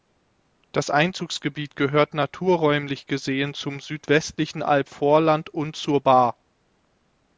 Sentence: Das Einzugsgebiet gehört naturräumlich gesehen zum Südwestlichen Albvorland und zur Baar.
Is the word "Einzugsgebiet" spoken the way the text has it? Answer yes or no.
yes